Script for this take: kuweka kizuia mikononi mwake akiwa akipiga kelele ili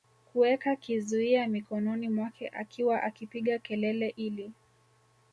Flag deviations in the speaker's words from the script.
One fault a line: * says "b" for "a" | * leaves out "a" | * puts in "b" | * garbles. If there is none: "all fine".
all fine